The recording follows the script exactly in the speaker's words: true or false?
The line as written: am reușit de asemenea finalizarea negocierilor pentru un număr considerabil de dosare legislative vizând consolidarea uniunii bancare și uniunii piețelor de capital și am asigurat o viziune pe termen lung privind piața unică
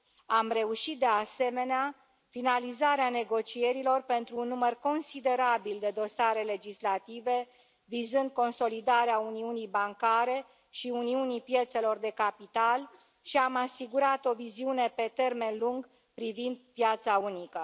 true